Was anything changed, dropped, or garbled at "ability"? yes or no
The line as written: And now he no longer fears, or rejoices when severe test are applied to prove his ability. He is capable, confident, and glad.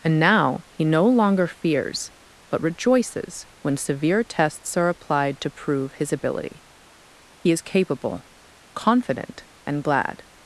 no